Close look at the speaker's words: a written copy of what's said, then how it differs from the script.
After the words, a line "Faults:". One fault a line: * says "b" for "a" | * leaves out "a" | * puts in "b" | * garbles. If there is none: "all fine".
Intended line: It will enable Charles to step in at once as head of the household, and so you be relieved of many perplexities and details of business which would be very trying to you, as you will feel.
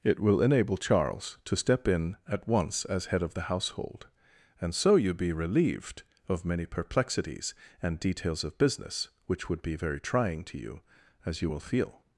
It will enable Charles to step in at once as head of the household, and so you be relieved of many perplexities and details of business which would be very trying to you, as you will feel.
Faults:
all fine